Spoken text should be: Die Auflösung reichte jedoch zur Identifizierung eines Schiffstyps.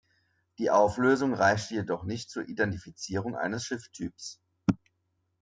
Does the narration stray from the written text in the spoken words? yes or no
yes